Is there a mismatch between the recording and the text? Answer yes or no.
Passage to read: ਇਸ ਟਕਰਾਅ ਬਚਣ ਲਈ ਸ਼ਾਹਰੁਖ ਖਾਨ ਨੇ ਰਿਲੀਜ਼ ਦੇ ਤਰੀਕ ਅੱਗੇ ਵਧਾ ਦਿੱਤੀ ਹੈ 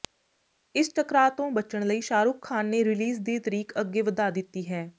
yes